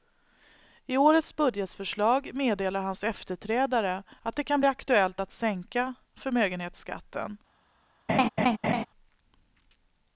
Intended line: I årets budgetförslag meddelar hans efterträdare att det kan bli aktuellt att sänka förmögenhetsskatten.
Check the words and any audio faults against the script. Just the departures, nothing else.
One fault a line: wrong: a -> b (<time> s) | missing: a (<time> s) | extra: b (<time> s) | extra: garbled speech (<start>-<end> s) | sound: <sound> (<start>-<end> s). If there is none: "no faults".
sound: laugh (8.1-8.9 s)